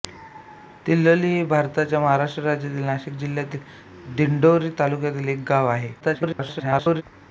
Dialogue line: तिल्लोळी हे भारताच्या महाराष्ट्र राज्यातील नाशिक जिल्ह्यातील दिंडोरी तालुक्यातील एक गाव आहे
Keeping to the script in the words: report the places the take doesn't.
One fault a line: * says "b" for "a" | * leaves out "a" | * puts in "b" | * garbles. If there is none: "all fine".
* garbles